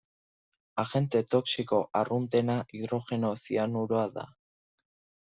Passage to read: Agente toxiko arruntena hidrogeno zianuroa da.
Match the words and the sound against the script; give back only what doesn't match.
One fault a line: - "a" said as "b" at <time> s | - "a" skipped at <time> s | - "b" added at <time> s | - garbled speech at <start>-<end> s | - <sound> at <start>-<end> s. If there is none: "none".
none